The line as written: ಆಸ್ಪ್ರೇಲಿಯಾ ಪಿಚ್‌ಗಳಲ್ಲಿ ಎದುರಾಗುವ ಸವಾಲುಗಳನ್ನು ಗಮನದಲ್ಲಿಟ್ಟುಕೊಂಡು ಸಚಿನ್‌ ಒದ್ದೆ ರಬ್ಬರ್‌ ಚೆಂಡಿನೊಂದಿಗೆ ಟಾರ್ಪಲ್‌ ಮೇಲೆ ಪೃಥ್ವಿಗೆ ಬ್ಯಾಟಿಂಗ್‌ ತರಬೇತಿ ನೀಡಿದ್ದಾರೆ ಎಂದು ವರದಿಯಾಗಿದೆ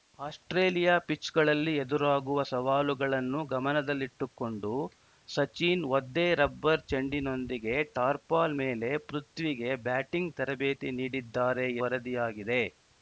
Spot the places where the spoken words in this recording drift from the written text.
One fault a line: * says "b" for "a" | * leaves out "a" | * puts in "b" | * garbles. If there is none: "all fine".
* leaves out "ಎಂದು"